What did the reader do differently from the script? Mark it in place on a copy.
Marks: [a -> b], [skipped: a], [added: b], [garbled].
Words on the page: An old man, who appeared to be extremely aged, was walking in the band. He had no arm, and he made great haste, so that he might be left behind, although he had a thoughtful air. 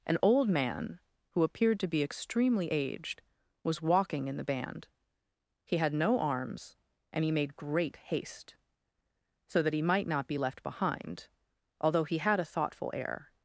An old man, who appeared to be extremely aged, was walking in the band. He had no [arm, -> arms] and he made great haste, so that he might [added: not] be left behind, although he had a thoughtful air.